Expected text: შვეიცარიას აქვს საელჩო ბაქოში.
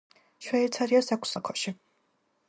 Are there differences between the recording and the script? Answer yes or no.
yes